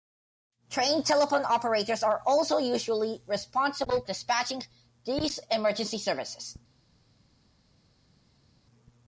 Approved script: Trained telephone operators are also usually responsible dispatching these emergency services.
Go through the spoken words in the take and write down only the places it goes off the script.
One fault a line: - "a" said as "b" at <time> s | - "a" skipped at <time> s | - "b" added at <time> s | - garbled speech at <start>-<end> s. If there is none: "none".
none